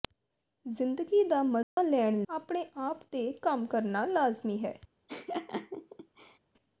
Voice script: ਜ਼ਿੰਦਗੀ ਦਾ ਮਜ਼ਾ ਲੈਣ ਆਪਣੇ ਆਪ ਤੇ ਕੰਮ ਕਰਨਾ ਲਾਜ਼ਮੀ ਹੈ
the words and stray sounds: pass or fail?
fail